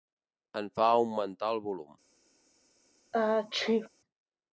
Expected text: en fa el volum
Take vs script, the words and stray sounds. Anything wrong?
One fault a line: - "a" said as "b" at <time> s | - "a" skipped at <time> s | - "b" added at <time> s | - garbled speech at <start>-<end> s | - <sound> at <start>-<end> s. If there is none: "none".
- "augmentar" added at 0.9 s
- sneeze at 3.1-3.9 s